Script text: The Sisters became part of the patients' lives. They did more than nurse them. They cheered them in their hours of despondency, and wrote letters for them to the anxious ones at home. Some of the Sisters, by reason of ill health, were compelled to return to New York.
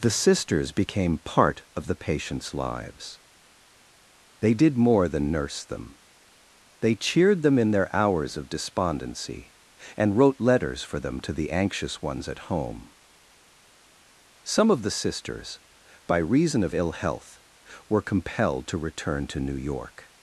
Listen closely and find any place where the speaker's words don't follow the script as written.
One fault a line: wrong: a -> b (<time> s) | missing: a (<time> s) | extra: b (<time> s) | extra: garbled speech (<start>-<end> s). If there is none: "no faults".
no faults